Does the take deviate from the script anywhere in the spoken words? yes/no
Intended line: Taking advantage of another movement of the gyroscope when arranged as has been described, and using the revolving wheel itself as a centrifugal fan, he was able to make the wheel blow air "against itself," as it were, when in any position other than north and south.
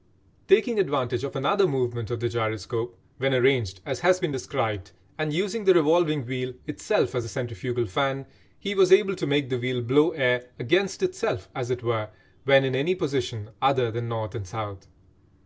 no